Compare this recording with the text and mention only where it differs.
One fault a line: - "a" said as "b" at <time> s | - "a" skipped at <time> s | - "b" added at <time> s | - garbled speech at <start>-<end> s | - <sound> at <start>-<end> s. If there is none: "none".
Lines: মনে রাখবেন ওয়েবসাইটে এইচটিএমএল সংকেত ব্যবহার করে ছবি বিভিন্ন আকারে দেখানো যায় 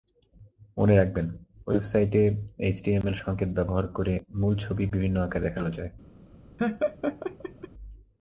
- "মূল" added at 4.4 s
- laugh at 6.6-7.7 s